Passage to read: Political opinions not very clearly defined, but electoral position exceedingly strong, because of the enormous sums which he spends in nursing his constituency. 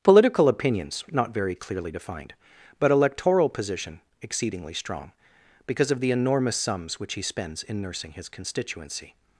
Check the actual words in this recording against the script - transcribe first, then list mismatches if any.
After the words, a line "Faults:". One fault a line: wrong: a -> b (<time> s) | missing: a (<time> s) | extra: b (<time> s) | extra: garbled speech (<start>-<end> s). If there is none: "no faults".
Political opinions not very clearly defined, but electoral position exceedingly strong, because of the enormous sums which he spends in nursing his constituency.
Faults:
no faults